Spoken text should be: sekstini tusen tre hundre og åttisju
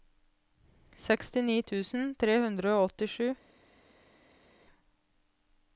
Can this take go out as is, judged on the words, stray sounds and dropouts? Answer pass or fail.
pass